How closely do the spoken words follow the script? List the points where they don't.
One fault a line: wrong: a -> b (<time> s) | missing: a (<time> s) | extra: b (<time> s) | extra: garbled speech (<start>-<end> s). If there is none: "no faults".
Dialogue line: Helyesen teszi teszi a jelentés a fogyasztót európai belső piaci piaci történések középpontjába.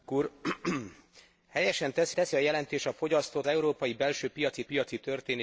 no faults